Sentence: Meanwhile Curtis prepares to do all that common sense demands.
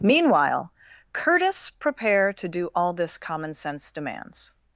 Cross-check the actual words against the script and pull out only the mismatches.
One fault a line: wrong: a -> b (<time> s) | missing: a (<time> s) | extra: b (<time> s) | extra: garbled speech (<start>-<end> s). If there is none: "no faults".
wrong: prepares -> prepare (1.7 s)
wrong: that -> this (2.9 s)